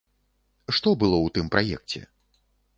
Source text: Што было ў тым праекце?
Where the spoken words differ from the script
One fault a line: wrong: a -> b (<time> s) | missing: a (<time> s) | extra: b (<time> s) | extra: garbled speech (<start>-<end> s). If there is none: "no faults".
no faults